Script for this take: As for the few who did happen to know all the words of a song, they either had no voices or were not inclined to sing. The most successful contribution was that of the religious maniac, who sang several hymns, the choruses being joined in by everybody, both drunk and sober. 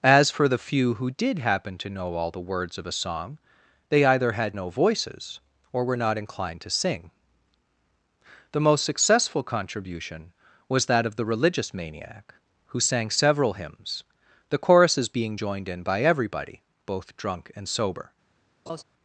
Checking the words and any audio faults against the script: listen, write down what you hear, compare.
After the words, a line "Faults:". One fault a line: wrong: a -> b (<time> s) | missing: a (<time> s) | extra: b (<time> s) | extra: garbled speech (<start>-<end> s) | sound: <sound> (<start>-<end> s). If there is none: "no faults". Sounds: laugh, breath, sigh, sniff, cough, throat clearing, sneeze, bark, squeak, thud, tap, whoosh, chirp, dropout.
As for the few who did happen to know all the words of a song, they either had no voices or were not inclined to sing. The most successful contribution was that of the religious maniac, who sang several hymns, the choruses being joined in by everybody, both drunk and sober.
Faults:
sound: laugh (18.7-18.8 s)